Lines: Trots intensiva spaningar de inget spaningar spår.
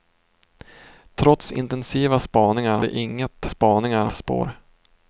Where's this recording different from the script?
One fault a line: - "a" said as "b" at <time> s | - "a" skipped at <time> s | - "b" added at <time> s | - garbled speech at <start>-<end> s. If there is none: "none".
none